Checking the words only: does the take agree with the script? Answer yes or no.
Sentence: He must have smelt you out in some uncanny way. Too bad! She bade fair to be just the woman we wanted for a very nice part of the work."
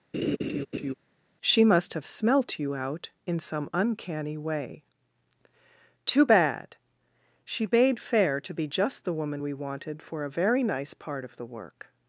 no